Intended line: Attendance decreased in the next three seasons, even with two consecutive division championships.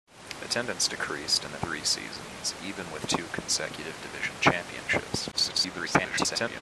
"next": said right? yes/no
no